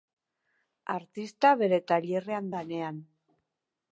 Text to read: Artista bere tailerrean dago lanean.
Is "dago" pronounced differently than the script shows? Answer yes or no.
yes